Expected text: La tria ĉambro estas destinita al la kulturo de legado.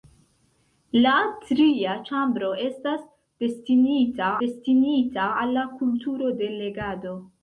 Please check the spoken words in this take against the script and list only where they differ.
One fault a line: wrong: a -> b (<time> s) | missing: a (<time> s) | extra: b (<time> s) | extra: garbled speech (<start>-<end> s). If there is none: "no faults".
extra: destinita (4.4 s)